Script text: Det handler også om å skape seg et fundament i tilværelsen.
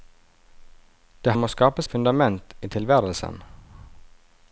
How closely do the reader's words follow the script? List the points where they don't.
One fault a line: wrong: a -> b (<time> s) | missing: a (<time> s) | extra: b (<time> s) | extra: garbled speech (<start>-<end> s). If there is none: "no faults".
missing: handler også (1.4 s)
missing: seg (1.8 s)